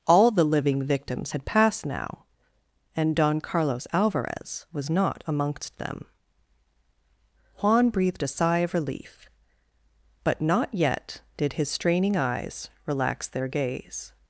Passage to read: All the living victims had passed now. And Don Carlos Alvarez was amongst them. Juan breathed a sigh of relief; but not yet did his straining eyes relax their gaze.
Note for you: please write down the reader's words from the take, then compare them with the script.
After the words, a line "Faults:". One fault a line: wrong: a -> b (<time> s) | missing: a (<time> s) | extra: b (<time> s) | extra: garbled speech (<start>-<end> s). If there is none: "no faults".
All the living victims had passed now. And Don Carlos Alvarez was not amongst them. Juan breathed a sigh of relief; but not yet did his straining eyes relax their gaze.
Faults:
extra: not (4.9 s)